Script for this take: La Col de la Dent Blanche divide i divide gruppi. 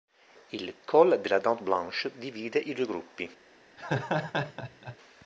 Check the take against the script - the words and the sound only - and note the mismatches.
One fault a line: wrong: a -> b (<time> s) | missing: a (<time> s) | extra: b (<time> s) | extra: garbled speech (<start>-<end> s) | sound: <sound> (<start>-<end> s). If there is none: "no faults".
wrong: La -> Il (0.5 s)
wrong: divide -> due (2.7 s)
sound: laugh (3.8-5.0 s)